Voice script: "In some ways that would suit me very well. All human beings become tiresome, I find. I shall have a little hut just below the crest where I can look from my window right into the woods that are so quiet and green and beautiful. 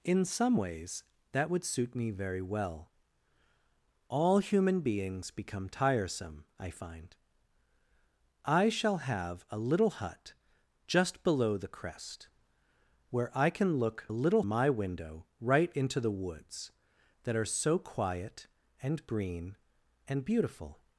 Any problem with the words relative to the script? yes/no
yes